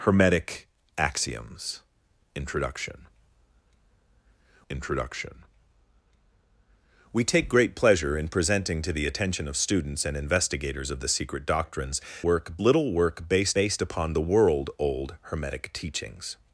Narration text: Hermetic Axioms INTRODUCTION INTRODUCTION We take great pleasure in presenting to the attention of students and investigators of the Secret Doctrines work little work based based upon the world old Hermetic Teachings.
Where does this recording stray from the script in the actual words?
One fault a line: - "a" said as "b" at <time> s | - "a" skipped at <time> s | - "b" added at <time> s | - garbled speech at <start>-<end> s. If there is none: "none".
none